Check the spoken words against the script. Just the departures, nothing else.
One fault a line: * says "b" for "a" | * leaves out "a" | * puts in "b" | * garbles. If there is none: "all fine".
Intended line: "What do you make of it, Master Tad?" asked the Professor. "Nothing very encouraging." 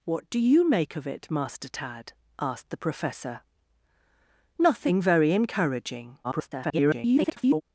* garbles